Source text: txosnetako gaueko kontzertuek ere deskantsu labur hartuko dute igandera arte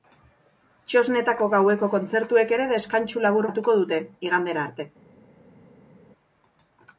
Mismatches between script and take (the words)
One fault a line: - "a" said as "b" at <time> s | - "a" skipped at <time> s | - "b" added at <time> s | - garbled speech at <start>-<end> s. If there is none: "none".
none